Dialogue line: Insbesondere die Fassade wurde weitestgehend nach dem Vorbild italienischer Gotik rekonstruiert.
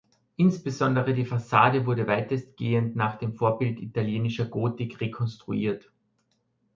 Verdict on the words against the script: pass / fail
pass